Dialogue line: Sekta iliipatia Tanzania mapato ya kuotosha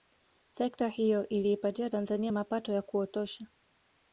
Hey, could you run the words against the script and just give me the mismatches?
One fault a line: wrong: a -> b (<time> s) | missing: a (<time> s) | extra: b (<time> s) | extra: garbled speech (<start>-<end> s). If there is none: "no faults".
extra: hiyo (0.9 s)